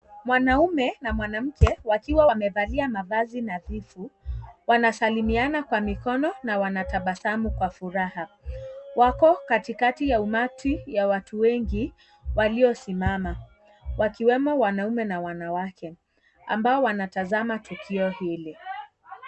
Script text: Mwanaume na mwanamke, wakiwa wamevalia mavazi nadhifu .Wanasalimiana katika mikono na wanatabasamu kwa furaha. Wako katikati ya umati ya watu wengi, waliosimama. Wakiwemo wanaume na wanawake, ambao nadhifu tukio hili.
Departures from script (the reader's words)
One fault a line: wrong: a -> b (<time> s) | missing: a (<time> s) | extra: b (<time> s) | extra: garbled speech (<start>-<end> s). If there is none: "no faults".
wrong: katika -> kwa (5.6 s)
wrong: nadhifu -> wanatazama (16.8 s)